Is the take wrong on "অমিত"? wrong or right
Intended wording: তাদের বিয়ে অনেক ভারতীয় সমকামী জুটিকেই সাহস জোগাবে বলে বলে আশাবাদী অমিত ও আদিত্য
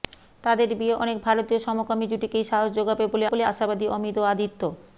right